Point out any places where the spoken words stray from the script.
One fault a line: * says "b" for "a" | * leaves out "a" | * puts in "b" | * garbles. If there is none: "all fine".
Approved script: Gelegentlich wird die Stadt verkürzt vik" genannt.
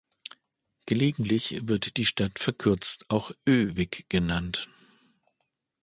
* puts in "auch Ö"